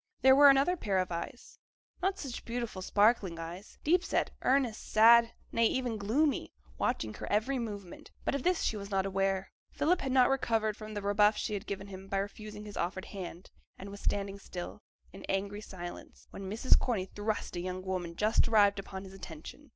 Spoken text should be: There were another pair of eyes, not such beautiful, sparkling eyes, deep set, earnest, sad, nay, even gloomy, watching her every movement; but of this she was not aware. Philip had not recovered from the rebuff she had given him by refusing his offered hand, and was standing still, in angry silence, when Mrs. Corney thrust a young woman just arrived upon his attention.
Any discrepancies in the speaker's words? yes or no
no